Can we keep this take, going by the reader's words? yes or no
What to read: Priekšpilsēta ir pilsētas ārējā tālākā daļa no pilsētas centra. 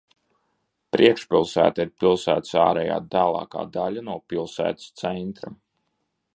yes